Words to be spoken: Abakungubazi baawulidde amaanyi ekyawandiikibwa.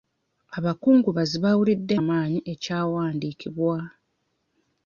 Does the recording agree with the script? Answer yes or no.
yes